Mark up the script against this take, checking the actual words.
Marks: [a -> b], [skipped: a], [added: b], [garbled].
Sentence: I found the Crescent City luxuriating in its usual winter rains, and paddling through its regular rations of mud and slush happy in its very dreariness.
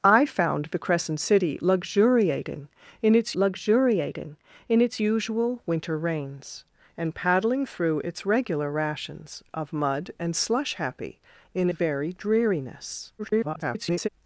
I found the Crescent City luxuriating in its [added: luxuriating in its] usual winter rains, and paddling through its regular rations of mud and slush happy in [skipped: its] very dreariness. [garbled]